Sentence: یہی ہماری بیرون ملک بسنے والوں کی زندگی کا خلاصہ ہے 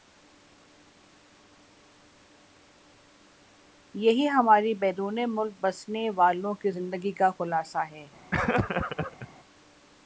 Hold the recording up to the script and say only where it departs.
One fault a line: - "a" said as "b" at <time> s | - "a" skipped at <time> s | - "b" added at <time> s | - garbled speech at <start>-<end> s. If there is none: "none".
none